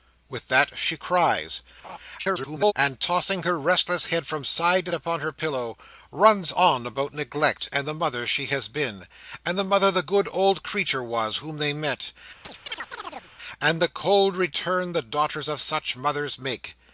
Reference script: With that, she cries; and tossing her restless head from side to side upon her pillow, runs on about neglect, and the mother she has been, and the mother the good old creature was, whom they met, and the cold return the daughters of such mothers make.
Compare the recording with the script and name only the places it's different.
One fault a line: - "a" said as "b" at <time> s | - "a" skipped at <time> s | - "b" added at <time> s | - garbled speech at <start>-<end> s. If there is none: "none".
- garbled speech at 2.2-2.7 s
- "side" skipped at 4.9 s